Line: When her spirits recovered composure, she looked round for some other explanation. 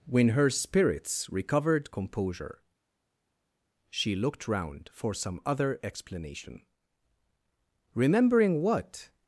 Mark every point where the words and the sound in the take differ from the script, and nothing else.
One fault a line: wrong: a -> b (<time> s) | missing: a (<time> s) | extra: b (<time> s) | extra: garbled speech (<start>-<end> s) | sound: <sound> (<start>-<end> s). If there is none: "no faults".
extra: Remembering what (7.9 s)